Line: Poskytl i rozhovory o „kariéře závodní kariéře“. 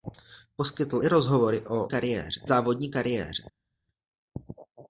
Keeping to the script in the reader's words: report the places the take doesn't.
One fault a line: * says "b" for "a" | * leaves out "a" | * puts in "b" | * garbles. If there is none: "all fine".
all fine